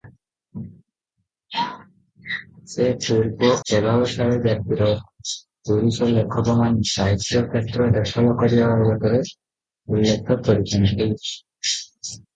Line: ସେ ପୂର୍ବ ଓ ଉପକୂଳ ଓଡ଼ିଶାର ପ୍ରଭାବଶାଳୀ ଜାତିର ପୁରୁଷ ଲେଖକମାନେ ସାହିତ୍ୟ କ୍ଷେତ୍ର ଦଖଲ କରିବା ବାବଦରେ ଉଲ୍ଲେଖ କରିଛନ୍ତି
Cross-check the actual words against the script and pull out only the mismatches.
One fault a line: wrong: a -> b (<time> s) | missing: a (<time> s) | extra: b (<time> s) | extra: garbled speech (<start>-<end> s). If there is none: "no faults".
missing: ଓ ଉପକୂଳ ଓଡ଼ିଶାର (3.5 s)